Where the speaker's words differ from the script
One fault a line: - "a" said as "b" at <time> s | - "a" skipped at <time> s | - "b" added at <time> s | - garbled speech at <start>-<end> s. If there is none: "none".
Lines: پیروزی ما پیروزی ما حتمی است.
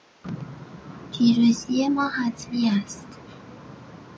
- "پیروزی ما" skipped at 2.1 s